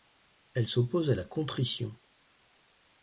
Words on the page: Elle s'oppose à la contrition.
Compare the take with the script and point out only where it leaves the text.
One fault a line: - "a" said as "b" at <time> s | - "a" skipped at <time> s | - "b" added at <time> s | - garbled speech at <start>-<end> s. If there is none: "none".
none